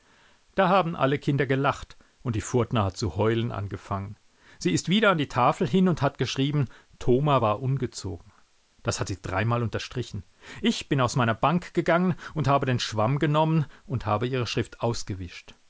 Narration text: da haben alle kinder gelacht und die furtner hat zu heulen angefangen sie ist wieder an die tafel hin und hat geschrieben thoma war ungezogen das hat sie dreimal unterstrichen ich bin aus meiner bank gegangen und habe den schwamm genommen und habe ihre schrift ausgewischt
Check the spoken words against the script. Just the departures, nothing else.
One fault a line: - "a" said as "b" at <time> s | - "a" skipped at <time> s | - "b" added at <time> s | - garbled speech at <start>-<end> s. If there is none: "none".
none